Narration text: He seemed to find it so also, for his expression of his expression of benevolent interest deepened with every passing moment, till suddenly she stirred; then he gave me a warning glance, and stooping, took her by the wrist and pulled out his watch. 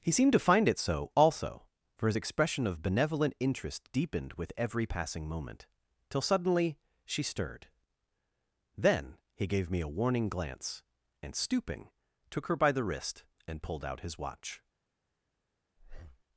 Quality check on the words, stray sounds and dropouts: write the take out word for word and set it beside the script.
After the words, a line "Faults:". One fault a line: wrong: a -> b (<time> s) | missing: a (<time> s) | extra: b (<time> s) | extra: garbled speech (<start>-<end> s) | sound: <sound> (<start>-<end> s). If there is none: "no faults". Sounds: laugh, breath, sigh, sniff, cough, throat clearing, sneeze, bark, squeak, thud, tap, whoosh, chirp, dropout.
He seemed to find it so also, for his expression of benevolent interest deepened with every passing moment, till suddenly she stirred; then he gave me a warning glance, and stooping, took her by the wrist and pulled out his watch.
Faults:
missing: his expression of (2.8 s)
sound: breath (15.8-16.2 s)